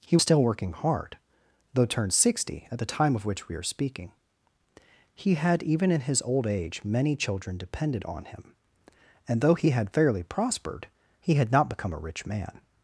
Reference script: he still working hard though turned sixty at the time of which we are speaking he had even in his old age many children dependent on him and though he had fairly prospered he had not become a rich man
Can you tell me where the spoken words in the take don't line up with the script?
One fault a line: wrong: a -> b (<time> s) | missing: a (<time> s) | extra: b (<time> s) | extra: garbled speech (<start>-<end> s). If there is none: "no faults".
no faults